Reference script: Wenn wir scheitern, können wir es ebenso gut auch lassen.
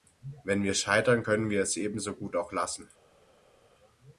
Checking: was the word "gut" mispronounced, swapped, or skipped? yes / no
no